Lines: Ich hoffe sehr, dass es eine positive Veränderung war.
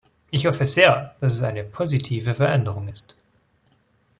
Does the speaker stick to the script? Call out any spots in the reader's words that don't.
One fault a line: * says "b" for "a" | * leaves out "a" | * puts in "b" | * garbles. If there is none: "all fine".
* says "ist" for "war"